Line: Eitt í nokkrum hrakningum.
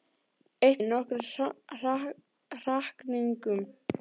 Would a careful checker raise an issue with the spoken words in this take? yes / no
no